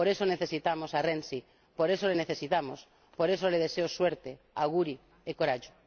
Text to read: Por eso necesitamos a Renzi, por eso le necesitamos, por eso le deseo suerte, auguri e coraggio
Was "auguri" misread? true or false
false